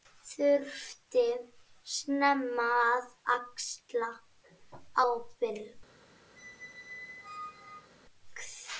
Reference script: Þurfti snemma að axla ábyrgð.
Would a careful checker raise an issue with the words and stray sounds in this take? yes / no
yes